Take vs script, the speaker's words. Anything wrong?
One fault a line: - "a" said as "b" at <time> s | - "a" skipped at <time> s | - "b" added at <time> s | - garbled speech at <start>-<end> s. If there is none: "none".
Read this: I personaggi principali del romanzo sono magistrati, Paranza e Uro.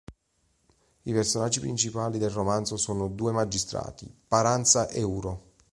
- "due" added at 3.1 s